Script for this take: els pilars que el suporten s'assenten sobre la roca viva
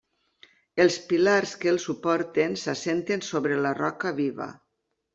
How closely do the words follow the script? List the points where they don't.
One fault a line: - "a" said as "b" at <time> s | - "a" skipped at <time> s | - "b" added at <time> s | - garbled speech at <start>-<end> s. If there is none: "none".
none